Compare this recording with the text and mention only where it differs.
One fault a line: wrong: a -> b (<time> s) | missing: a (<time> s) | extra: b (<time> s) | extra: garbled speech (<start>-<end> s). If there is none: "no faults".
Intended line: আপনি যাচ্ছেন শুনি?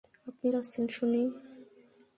no faults